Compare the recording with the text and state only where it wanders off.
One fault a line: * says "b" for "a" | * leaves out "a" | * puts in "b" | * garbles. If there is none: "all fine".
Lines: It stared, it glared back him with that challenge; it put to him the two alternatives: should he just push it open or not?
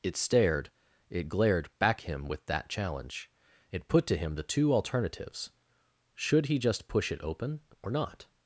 all fine